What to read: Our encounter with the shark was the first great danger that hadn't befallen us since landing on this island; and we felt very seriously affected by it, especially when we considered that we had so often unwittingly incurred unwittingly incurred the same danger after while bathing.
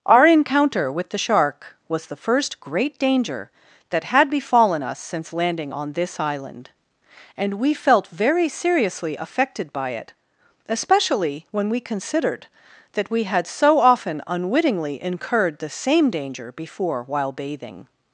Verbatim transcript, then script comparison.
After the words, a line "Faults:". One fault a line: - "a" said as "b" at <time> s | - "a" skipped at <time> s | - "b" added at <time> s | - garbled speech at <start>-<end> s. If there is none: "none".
Our encounter with the shark was the first great danger that had befallen us since landing on this island; and we felt very seriously affected by it, especially when we considered that we had so often unwittingly incurred the same danger before while bathing.
Faults:
- "hadn't" said as "had" at 4.0 s
- "unwittingly incurred" skipped at 15.6 s
- "after" said as "before" at 16.5 s